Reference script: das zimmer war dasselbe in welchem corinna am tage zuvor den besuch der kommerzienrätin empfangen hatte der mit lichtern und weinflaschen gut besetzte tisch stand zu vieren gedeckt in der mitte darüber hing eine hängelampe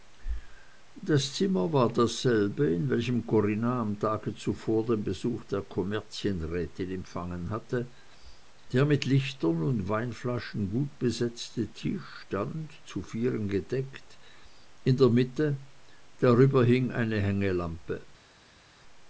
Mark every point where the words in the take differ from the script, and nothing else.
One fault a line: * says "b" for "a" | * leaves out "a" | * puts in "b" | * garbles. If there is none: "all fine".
all fine